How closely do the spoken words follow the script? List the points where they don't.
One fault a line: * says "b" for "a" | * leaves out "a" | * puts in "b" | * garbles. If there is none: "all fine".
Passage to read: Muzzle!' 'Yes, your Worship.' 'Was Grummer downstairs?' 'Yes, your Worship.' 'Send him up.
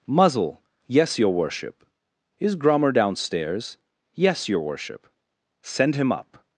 * says "Is" for "Was"